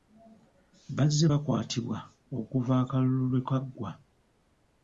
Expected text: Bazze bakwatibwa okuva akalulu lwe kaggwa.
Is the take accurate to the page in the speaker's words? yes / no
yes